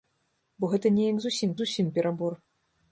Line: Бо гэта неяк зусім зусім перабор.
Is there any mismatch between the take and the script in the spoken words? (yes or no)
no